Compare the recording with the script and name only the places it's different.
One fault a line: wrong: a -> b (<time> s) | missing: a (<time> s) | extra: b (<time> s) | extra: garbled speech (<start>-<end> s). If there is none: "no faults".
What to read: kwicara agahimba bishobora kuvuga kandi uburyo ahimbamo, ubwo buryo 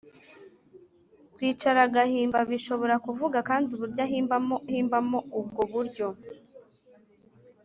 extra: ahimbamo (4.7 s)